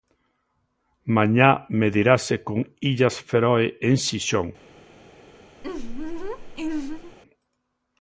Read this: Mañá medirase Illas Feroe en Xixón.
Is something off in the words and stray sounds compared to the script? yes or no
yes